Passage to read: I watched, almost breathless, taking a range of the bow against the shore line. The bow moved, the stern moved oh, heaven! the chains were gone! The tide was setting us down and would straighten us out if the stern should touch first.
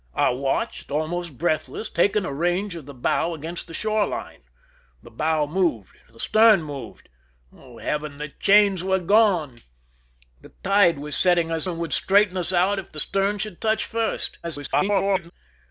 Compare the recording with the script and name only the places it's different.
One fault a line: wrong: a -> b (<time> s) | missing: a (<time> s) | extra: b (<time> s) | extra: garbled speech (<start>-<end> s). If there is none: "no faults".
missing: down (11.7 s)
extra: garbled speech (14.4-15.3 s)